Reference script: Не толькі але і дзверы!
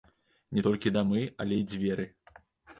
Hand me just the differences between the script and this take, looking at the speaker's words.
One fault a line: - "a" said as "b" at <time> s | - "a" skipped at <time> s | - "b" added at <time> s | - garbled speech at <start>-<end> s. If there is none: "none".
- "дамы" added at 1.0 s